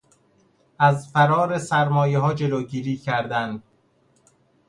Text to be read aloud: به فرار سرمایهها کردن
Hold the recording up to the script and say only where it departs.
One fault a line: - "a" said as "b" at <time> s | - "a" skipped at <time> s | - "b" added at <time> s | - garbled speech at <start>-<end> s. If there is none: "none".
- "به" said as "از" at 0.8 s
- "جلوگیری" added at 2.3 s